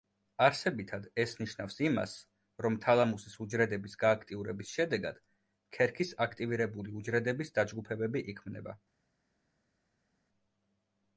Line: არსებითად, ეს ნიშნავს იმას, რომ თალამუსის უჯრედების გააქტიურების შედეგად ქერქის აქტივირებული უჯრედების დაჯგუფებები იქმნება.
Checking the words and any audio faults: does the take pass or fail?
pass